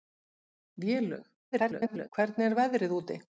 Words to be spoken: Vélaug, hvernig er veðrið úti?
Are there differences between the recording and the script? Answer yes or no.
yes